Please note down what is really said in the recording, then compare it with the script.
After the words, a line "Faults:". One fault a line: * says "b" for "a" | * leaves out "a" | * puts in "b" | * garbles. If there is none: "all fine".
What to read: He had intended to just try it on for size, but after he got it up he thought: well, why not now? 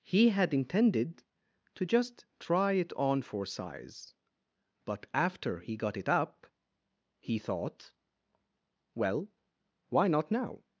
He had intended to just try it on for size, but after he got it up he thought: well, why not now?
Faults:
all fine